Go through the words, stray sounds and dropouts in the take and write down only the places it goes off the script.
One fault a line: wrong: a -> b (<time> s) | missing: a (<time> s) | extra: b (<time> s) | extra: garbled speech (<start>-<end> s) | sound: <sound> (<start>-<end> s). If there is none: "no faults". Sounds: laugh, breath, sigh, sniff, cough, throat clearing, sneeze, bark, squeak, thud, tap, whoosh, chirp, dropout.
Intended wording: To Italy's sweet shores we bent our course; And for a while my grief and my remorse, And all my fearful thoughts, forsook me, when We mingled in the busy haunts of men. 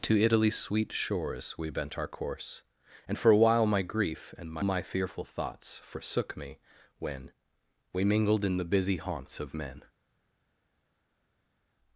missing: remorse And all (4.6 s)